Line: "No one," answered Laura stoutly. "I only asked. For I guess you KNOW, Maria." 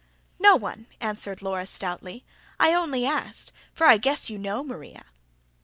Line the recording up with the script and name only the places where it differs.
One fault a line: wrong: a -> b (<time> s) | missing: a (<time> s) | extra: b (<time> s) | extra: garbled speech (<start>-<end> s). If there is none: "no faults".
no faults